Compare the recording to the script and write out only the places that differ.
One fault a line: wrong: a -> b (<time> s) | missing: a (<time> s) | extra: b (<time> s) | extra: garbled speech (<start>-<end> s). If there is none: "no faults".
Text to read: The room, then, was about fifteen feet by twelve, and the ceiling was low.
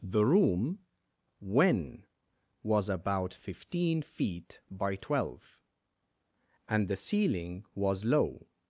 wrong: then -> when (1.4 s)